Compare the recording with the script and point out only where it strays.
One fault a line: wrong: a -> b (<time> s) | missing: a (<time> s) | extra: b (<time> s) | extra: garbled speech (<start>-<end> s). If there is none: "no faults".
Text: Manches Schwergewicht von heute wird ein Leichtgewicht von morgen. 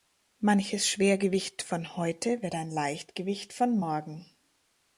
no faults